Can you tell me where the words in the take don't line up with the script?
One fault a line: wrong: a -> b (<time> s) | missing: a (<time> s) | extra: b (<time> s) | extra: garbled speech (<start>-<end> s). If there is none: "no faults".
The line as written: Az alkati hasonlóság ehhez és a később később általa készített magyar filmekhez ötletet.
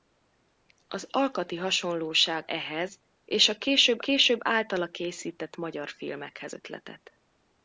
no faults